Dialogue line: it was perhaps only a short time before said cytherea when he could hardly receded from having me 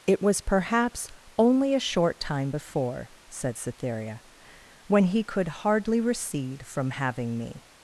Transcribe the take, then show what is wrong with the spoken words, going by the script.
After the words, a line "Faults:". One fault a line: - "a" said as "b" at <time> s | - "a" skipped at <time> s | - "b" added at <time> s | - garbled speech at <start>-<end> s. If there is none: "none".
it was perhaps only a short time before said cytherea when he could hardly recede from having me
Faults:
- "receded" said as "recede" at 6.0 s